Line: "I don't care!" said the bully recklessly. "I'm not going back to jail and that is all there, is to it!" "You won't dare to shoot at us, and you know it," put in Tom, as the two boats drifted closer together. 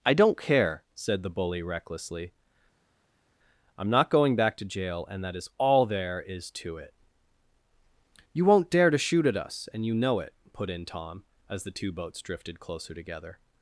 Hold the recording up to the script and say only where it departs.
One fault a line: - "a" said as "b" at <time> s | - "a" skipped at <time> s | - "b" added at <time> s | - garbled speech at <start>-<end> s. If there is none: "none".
none